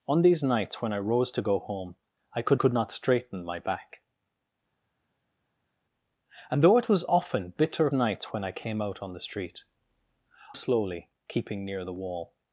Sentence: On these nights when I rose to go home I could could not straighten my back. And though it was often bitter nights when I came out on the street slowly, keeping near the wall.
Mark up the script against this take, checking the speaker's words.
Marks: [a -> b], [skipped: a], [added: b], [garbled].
On these nights when I rose to go home I could could not straighten my back. And though it was often bitter nights when I came out on the street slowly, keeping near the wall.